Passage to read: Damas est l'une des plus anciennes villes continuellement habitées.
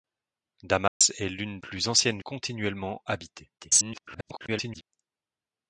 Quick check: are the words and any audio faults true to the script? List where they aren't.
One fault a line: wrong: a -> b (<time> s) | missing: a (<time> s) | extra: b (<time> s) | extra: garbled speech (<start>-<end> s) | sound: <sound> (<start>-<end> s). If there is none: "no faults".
sound: dropout (0.9-1.0 s)
missing: des (1.6 s)
missing: villes (2.2 s)
extra: garbled speech (3.6-4.8 s)